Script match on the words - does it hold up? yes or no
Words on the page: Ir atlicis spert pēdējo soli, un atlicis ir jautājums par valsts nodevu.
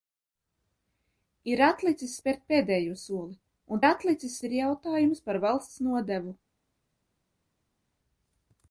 yes